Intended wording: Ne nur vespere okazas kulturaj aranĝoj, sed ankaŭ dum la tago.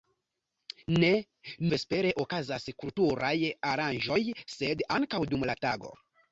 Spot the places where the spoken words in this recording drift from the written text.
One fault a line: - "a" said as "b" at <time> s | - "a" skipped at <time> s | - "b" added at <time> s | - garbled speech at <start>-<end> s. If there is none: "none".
- "nur" skipped at 1.1 s